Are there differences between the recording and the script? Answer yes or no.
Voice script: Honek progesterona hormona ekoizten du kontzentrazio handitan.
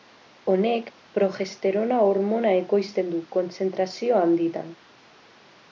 no